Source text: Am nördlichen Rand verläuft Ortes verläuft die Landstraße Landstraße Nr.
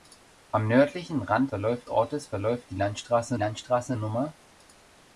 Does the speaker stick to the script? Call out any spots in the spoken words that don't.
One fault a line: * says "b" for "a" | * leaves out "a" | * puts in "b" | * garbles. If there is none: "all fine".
all fine